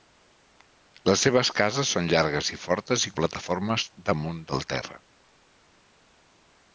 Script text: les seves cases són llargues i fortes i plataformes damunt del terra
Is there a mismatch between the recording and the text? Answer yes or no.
no